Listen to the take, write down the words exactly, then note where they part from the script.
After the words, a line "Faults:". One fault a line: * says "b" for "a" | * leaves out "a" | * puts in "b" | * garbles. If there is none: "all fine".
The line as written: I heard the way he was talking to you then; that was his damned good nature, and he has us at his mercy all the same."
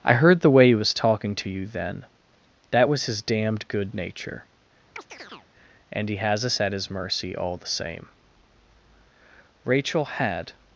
I heard the way he was talking to you then; that was his damned good nature, and he has us at his mercy all the same." Rachel had
Faults:
* puts in "Rachel had"